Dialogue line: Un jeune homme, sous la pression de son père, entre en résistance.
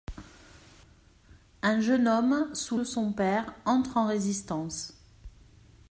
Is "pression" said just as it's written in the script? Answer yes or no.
no